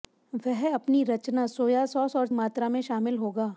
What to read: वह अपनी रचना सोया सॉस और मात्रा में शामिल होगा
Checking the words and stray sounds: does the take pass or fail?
pass